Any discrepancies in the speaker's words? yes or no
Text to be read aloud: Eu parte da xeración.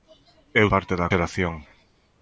no